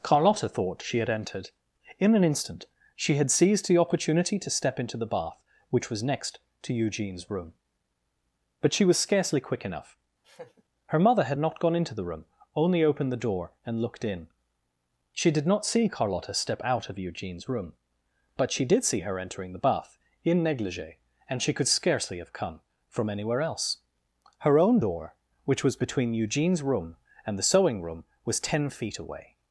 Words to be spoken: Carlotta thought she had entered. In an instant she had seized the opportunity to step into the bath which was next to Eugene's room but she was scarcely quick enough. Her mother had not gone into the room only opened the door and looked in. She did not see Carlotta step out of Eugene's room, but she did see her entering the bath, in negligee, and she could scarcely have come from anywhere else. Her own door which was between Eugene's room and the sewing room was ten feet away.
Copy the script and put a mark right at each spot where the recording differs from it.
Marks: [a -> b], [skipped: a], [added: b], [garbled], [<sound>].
Carlotta thought she had entered. In an instant she had seized the opportunity to step into the bath which was next to Eugene's room but she was scarcely quick enough. [laugh] Her mother had not gone into the room only opened the door and looked in. She did not see Carlotta step out of Eugene's room, but she did see her entering the bath, in negligee, and she could scarcely have come from anywhere else. Her own door which was between Eugene's room and the sewing room was ten feet away.